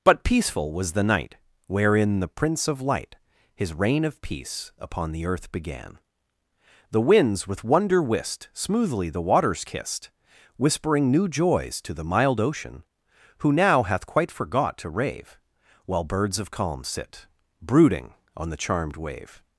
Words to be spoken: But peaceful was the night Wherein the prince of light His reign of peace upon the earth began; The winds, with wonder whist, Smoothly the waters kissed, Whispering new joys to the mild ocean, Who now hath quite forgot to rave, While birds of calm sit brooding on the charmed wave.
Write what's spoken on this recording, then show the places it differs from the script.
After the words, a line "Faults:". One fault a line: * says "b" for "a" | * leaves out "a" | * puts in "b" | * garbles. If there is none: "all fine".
But peaceful was the night Wherein the prince of light His reign of peace upon the earth began; The winds, with wonder whist, Smoothly the waters kissed, Whispering new joys to the mild ocean, Who now hath quite forgot to rave, While birds of calm sit brooding on the charmed wave.
Faults:
all fine